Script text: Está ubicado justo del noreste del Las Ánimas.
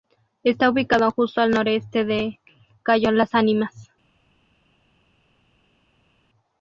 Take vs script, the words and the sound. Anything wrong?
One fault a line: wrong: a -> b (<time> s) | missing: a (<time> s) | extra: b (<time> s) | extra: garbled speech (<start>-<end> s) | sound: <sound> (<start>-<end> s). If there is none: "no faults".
wrong: del -> al (1.4 s)
extra: cayo (2.8 s)